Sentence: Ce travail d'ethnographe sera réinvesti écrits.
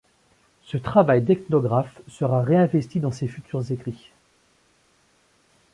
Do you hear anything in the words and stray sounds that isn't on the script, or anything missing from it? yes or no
yes